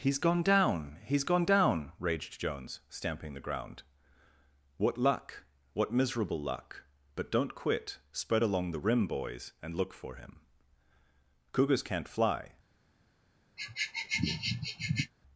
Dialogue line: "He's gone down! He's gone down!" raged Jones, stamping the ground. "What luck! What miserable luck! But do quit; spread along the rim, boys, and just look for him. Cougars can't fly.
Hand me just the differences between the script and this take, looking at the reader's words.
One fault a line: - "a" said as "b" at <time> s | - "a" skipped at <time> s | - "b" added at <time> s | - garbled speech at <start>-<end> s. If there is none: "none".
- "do" said as "don't" at 7.3 s
- "just" skipped at 9.8 s